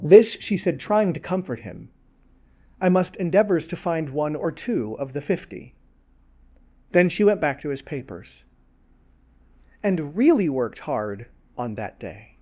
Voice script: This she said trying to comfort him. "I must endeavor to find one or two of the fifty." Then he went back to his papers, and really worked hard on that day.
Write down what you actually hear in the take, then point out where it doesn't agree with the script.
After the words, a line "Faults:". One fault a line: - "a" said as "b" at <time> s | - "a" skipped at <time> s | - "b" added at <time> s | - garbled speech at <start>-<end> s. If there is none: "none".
This she said trying to comfort him. "I must endeavors to find one or two of the fifty." Then she went back to his papers, and really worked hard on that day.
Faults:
- "endeavor" said as "endeavors" at 3.2 s
- "he" said as "she" at 7.1 s